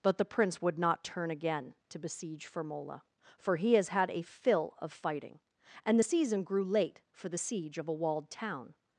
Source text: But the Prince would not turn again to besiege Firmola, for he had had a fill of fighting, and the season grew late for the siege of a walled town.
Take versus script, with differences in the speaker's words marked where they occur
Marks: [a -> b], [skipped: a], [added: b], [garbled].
But the Prince would not turn again to besiege Firmola, for he [had -> has] had a fill of fighting, and the season grew late for the siege of a walled town.